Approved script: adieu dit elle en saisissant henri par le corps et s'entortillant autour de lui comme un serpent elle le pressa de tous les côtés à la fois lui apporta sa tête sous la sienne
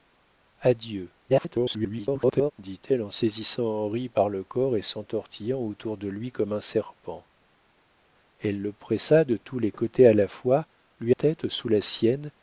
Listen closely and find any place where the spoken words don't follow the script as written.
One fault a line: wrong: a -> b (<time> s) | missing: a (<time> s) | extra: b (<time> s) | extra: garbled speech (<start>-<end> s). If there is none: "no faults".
extra: garbled speech (1.3-2.5 s)
missing: apporta sa (11.1 s)